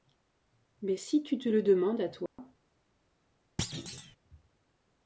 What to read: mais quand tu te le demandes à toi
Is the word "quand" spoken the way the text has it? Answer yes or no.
no